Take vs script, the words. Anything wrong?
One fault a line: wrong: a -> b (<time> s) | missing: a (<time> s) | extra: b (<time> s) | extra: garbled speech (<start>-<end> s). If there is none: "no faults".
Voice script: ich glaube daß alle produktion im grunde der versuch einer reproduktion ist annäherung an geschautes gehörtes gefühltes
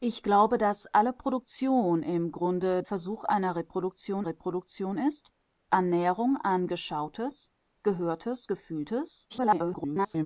missing: der (2.8 s)
extra: reproduktion (4.2 s)
extra: garbled speech (9.3-10.3 s)